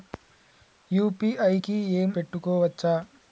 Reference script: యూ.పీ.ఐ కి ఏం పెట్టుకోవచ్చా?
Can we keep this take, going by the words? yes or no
yes